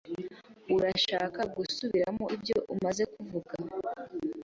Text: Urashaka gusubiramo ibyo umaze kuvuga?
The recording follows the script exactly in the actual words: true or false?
true